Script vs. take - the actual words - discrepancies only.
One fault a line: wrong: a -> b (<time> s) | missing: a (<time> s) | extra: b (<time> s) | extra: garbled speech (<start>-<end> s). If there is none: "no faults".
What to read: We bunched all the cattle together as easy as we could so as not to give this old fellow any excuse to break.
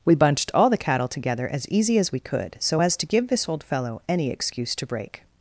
missing: not (2.9 s)